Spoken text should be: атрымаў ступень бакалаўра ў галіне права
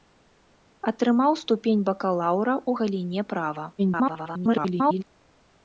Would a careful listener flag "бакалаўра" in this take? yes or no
no